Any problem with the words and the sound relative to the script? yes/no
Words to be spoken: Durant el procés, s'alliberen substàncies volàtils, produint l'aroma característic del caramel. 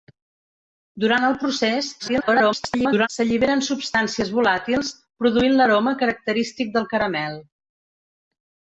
yes